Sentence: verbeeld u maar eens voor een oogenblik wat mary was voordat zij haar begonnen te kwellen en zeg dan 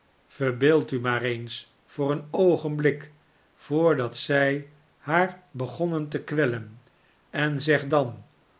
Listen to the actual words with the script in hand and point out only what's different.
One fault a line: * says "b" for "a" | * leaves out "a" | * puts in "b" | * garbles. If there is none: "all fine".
* leaves out "wat mary was"